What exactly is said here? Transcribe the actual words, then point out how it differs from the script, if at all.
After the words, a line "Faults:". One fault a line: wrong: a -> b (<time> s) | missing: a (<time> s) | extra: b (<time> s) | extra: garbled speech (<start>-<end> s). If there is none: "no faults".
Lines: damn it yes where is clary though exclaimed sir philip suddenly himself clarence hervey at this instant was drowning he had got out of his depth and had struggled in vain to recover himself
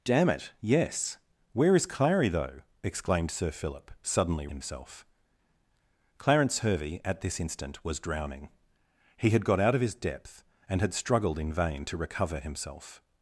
damn it yes where is clary though exclaimed sir philip suddenly himself clarence hervey at this instant was drowning he had got out of his depth and had struggled in vain to recover himself
Faults:
no faults